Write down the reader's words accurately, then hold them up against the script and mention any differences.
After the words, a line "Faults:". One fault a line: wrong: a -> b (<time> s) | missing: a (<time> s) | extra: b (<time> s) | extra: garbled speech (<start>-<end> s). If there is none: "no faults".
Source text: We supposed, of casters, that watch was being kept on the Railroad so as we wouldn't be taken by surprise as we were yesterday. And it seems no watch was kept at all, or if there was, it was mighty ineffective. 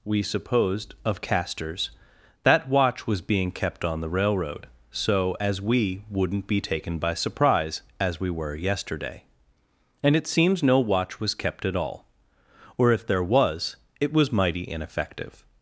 We supposed, of casters, that watch was being kept on the Railroad so as we wouldn't be taken by surprise as we were yesterday. And it seems no watch was kept at all, or if there was, it was mighty ineffective.
Faults:
no faults